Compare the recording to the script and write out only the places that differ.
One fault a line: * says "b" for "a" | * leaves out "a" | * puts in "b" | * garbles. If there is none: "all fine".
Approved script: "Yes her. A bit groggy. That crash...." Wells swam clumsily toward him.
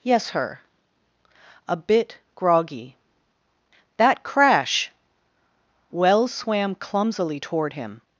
all fine